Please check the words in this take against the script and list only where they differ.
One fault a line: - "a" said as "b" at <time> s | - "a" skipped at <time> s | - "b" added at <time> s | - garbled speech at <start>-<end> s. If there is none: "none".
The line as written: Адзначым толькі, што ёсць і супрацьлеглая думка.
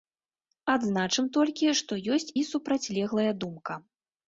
none